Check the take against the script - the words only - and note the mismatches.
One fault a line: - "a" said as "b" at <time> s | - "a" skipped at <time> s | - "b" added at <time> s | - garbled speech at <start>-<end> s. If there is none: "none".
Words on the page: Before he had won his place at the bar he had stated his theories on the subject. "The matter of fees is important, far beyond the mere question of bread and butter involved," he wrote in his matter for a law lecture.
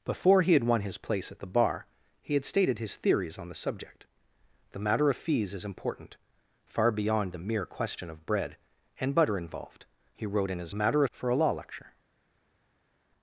none